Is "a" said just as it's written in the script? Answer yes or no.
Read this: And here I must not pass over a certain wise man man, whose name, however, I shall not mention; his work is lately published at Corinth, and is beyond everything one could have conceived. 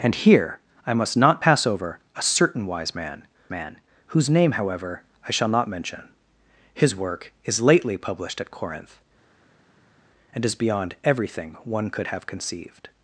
yes